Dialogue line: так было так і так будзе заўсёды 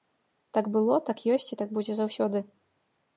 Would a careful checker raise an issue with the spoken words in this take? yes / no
yes